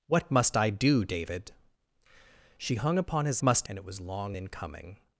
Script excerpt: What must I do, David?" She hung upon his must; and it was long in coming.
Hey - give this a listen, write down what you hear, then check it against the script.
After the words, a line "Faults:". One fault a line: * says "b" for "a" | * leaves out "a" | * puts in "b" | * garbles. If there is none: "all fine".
What must I do, David?" She hung upon his must; and it was long in coming.
Faults:
all fine